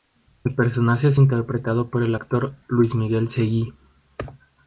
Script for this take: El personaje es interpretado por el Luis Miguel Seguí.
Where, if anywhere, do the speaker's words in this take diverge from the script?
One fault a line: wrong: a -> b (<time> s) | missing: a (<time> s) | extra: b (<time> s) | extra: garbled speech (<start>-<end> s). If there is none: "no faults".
extra: actor (2.1 s)